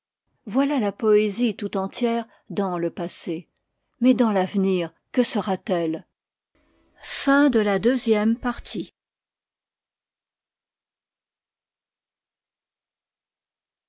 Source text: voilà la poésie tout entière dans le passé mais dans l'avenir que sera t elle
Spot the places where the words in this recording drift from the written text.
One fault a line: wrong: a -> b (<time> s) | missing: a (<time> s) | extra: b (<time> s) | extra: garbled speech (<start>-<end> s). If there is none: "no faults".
no faults